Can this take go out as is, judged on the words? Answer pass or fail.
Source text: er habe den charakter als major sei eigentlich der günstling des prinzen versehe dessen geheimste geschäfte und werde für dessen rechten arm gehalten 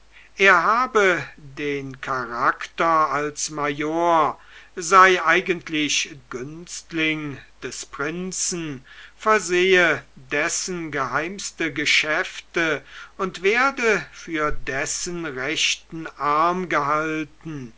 fail